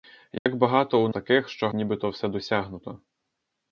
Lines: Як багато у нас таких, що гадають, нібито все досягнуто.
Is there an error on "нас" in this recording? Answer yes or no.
yes